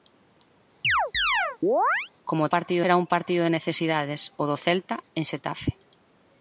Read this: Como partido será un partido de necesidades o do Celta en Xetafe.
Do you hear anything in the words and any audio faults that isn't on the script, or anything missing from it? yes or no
yes